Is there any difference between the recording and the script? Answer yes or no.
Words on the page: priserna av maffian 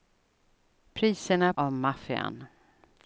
no